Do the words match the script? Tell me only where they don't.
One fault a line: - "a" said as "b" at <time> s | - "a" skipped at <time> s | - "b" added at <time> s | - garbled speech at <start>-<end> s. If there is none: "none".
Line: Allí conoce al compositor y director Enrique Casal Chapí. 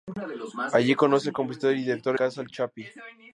- "Enrique" skipped at 2.2 s